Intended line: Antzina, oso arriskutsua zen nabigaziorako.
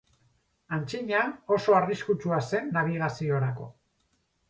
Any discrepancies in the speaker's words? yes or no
no